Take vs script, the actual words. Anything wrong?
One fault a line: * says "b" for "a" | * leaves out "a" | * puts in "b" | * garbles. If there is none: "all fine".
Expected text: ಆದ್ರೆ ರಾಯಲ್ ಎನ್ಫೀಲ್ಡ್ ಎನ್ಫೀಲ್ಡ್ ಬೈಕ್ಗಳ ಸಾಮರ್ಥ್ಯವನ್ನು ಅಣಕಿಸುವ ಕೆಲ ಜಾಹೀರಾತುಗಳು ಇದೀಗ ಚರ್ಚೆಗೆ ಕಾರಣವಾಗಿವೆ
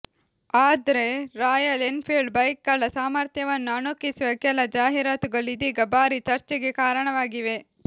* leaves out "ಎನ್ಫೀಲ್ಡ್"
* puts in "ಭಾರೀ"